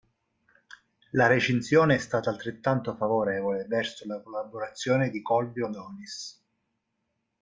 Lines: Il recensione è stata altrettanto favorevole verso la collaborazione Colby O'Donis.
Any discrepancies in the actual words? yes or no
yes